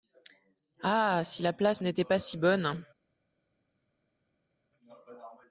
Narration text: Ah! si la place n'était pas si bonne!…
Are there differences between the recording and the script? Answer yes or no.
no